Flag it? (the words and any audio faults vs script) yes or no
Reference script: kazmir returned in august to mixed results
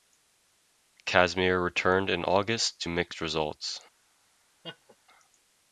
yes